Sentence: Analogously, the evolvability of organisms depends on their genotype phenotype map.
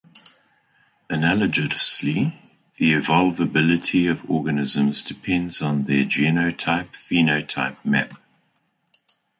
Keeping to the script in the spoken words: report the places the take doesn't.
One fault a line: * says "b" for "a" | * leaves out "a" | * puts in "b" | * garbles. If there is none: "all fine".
all fine